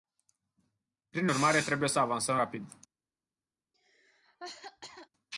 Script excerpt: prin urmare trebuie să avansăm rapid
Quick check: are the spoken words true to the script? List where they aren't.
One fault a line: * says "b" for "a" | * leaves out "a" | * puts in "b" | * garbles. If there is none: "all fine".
all fine